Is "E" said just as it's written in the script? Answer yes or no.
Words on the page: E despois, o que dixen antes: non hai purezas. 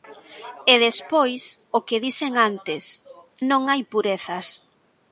yes